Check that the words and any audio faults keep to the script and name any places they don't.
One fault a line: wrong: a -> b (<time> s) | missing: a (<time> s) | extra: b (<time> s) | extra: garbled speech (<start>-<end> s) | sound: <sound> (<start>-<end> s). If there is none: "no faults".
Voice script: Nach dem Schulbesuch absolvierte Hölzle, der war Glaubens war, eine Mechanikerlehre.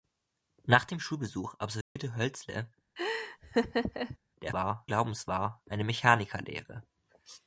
sound: dropout (1.8-2.0 s)
sound: laugh (3.0-4.2 s)